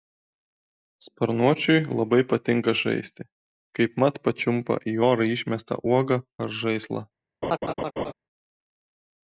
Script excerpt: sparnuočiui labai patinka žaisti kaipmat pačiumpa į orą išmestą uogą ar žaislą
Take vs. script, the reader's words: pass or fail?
pass